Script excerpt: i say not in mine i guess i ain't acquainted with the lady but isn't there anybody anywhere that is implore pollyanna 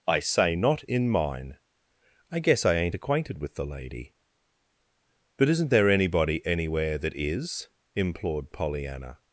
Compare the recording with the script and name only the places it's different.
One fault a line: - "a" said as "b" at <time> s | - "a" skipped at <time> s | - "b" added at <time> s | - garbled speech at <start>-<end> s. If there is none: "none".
- "implore" said as "implored" at 7.9 s